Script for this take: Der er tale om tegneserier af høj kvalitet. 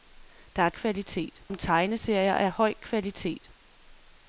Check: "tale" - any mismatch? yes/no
yes